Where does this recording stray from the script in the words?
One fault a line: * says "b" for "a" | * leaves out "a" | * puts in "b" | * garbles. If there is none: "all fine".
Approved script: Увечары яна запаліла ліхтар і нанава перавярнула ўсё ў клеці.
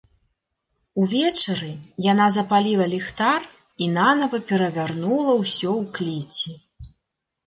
all fine